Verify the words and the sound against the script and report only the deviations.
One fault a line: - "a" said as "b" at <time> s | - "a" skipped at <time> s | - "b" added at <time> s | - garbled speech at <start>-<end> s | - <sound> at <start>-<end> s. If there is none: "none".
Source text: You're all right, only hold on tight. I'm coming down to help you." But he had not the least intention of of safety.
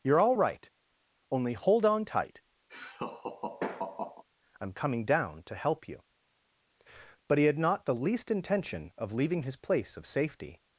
- laugh at 2.7-4.2 s
- "leaving his place" added at 9.1 s